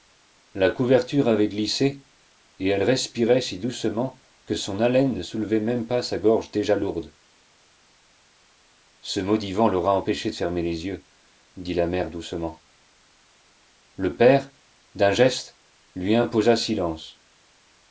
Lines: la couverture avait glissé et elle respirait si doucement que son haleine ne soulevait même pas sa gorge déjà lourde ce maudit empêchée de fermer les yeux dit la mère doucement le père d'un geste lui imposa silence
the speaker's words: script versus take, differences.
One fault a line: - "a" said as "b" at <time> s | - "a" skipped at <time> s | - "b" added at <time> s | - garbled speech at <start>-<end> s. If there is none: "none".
- "vent l'aura" added at 9.5 s